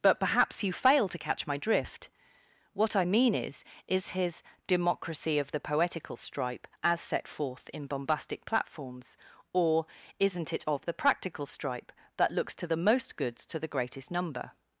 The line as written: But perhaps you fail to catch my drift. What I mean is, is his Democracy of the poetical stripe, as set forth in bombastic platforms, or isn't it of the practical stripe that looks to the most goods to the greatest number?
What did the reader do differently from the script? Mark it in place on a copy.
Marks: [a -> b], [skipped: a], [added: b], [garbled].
But perhaps you fail to catch my drift. What I mean is, is his Democracy of the poetical stripe, as set forth in bombastic platforms, or isn't it of the practical stripe that looks to the most goods to the greatest number?